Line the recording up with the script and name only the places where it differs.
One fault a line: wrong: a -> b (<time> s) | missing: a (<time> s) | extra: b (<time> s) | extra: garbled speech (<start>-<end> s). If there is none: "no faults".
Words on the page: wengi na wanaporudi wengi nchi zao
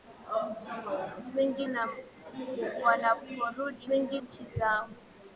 no faults